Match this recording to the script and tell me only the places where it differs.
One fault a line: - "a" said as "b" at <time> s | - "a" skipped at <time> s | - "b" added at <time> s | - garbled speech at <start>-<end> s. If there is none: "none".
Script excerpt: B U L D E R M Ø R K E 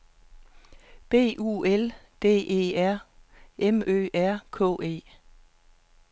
none